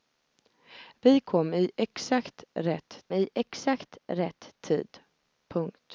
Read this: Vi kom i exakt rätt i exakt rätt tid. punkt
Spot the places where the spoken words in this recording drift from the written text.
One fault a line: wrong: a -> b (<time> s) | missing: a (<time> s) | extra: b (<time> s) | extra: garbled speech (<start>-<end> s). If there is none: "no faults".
no faults